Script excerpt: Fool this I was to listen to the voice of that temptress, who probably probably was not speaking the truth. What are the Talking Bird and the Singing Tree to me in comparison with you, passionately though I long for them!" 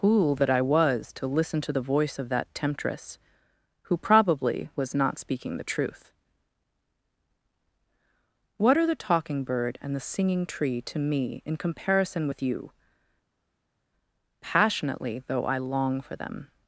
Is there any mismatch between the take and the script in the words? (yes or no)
yes